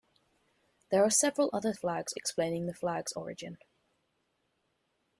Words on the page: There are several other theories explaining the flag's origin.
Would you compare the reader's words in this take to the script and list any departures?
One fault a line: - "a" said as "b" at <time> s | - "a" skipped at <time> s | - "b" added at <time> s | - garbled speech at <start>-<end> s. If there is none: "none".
- "theories" said as "flag's" at 1.7 s